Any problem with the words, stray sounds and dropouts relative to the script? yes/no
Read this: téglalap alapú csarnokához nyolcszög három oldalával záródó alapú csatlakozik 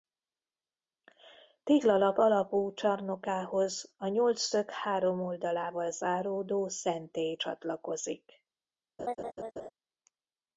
yes